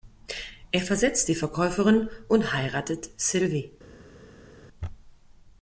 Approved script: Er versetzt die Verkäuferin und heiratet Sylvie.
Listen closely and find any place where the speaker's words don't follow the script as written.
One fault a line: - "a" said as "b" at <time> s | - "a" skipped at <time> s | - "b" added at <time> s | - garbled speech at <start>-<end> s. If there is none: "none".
none